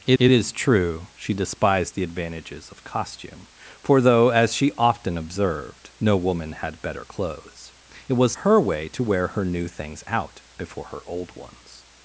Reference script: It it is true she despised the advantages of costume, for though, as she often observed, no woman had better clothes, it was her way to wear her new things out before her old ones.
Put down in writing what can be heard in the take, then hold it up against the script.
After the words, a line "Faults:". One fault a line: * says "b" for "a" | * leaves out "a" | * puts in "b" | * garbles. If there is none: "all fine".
It it is true she despised the advantages of costume, for though, as she often observed, no woman had better clothes, it was her way to wear her new things out before her old ones.
Faults:
all fine